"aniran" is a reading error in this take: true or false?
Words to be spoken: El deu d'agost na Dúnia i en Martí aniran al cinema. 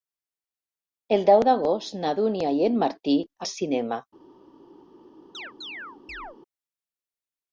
true